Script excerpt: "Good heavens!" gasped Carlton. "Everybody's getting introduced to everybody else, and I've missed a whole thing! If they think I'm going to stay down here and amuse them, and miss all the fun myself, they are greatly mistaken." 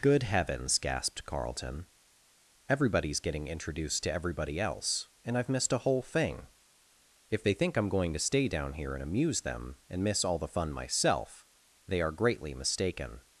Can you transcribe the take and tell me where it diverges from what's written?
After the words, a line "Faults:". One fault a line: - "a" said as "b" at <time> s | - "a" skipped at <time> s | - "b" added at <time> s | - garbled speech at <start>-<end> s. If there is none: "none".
"Good heavens!" gasped Carlton. "Everybody's getting introduced to everybody else, and I've missed a whole thing! If they think I'm going to stay down here and amuse them, and miss all the fun myself, they are greatly mistaken."
Faults:
none